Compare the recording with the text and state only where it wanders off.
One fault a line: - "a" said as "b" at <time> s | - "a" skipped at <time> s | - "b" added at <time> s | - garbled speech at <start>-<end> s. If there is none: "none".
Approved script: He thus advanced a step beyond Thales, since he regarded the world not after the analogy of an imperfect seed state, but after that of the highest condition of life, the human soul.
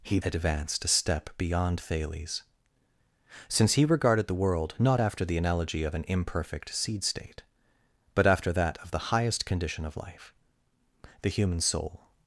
- "thus" skipped at 0.2 s